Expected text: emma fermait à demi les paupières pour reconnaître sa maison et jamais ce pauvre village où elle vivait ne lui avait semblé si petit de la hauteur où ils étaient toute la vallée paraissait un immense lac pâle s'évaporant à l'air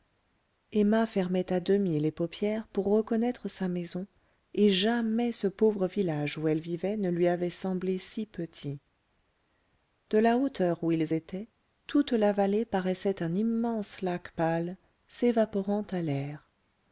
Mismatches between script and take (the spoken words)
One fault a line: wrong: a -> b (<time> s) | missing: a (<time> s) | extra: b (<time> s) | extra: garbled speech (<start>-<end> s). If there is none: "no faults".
no faults